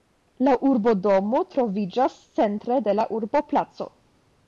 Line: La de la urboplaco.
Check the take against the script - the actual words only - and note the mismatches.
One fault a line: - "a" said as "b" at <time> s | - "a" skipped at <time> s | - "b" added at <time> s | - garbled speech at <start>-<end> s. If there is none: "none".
- "urbodomo troviĝas centre" added at 0.7 s